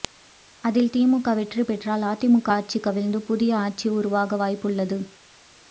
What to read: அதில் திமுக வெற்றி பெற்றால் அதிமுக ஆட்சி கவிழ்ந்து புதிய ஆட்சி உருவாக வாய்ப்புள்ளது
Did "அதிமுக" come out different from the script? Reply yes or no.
no